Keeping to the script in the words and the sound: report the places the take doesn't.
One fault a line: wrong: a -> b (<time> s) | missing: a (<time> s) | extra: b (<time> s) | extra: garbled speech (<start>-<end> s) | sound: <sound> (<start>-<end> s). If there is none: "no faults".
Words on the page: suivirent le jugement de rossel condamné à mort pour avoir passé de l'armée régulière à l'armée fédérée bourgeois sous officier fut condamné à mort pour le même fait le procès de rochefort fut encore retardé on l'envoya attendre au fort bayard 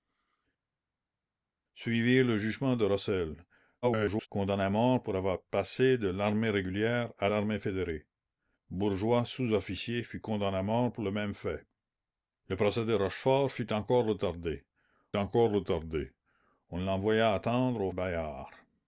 extra: garbled speech (3.8-4.3 s)
extra: encore retardé (15.2 s)
missing: fort (17.9 s)